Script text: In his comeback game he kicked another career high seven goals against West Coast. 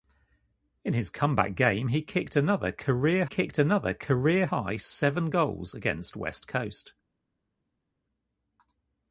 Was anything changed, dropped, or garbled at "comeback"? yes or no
no